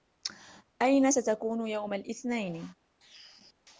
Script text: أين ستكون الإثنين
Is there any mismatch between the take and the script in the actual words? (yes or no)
yes